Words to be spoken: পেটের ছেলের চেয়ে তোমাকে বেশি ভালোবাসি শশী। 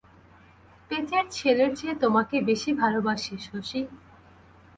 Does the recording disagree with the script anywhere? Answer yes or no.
no